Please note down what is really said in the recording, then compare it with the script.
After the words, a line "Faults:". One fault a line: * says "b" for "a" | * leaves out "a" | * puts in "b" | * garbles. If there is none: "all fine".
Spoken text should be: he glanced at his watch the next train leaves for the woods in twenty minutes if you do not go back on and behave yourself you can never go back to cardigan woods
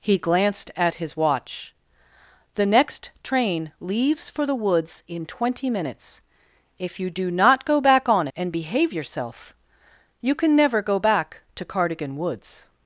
he glanced at his watch the next train leaves for the woods in twenty minutes if you do not go back on and behave yourself you can never go back to cardigan woods
Faults:
all fine